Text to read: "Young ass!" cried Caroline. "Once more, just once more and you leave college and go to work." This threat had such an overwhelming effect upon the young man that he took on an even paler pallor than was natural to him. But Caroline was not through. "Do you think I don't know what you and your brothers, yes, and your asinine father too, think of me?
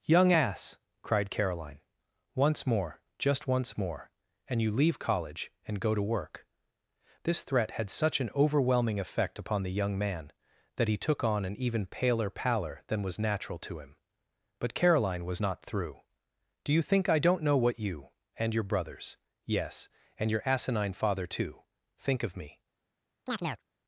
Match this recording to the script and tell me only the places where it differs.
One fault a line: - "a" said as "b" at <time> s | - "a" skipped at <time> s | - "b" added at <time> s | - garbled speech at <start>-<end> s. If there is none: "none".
none